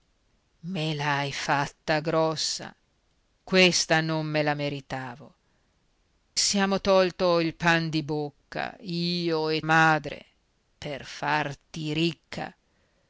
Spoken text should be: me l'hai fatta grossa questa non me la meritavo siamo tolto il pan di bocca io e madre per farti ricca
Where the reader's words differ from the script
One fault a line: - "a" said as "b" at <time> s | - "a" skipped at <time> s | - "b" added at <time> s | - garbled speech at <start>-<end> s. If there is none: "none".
none